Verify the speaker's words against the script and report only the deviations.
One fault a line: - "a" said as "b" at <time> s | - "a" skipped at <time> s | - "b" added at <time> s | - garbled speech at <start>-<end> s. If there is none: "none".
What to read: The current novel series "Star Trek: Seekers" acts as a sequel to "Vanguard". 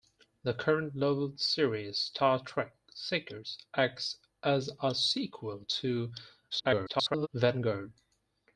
- garbled speech at 6.5-7.3 s